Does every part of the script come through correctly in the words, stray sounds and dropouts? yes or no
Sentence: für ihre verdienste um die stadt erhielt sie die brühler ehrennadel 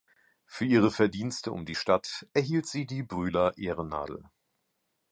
yes